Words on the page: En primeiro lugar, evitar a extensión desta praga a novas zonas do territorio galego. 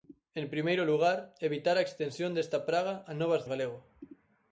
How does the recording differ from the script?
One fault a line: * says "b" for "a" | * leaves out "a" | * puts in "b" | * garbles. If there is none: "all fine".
* leaves out "zonas do territorio"